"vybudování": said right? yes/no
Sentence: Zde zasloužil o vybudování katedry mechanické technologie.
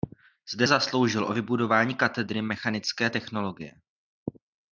yes